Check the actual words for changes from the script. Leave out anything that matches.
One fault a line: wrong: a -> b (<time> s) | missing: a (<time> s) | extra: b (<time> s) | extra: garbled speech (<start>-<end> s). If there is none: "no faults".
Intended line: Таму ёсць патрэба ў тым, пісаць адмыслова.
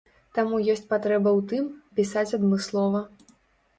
no faults